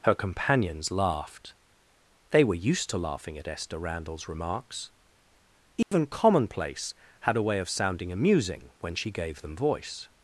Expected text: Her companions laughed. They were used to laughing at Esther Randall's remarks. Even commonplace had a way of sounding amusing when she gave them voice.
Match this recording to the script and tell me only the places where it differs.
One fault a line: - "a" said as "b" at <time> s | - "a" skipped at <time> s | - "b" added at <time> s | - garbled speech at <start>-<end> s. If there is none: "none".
none